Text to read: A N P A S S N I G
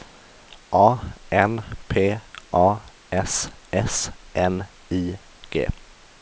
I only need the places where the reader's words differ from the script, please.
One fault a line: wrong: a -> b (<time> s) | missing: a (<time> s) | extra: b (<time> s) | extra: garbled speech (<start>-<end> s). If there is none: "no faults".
no faults